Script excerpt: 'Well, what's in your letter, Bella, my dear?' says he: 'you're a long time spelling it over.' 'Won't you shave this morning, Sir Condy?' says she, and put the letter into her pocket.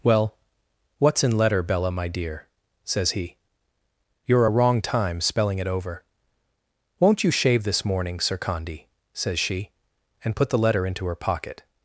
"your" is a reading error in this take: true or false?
true